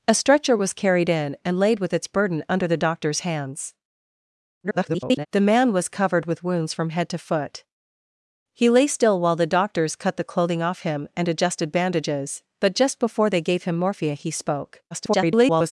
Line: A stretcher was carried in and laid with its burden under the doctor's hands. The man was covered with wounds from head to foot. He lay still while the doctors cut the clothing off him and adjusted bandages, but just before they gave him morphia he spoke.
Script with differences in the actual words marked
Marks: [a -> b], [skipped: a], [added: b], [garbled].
A stretcher was carried in and laid with its burden under the doctor's hands. [garbled] The man was covered with wounds from head to foot. He lay still while the doctors cut the clothing off him and adjusted bandages, but just before they gave him morphia he spoke. [garbled]